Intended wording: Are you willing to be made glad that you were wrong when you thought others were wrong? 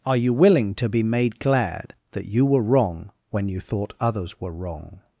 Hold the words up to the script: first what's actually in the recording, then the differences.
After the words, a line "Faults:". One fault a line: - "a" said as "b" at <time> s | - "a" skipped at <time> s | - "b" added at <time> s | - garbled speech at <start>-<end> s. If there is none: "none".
Are you willing to be made glad that you were wrong when you thought others were wrong?
Faults:
none